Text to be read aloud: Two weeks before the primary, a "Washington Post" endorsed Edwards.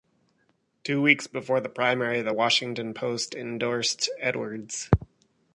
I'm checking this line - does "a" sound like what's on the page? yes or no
no